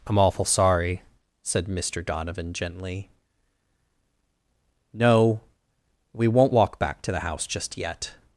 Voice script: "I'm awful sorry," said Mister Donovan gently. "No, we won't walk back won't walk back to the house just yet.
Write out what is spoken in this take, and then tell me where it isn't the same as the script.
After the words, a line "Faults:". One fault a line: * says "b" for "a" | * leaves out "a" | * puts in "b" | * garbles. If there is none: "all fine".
"I'm awful sorry," said Mister Donovan gently. "No, we won't walk back to the house just yet.
Faults:
* leaves out "won't walk back"